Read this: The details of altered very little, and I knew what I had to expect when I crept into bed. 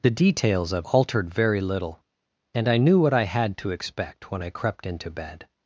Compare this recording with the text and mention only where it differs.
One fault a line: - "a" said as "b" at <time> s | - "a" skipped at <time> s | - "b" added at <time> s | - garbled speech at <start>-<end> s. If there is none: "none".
none